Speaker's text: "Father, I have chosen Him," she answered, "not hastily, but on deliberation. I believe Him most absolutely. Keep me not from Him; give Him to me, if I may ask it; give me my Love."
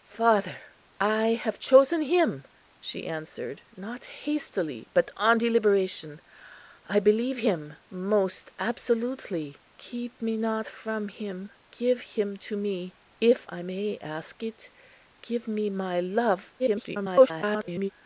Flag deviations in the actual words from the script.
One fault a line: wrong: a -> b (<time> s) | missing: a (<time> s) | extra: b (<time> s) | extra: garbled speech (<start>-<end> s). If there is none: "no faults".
extra: garbled speech (16.6-17.9 s)